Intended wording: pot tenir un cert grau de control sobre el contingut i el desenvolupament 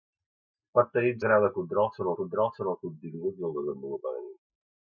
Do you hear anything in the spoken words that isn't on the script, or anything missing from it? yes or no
yes